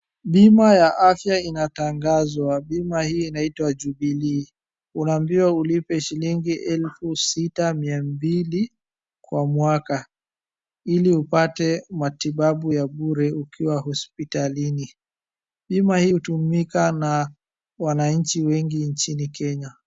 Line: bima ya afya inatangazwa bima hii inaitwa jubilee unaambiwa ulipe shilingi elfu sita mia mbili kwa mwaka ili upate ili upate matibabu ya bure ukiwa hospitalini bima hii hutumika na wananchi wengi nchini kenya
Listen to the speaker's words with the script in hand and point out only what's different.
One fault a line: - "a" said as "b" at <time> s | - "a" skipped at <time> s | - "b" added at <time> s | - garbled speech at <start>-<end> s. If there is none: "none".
- "ili upate" skipped at 11.8 s